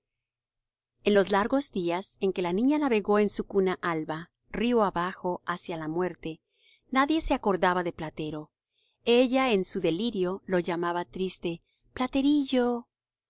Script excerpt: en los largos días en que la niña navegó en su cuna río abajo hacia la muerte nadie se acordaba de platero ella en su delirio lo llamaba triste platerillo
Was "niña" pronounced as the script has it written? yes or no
yes